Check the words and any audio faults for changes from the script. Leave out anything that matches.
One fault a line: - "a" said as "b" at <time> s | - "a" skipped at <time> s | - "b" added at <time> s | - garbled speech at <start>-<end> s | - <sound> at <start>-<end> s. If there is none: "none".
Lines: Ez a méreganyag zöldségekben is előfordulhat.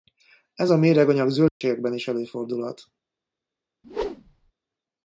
- dropout at 1.5-1.6 s
- whoosh at 3.8-4.5 s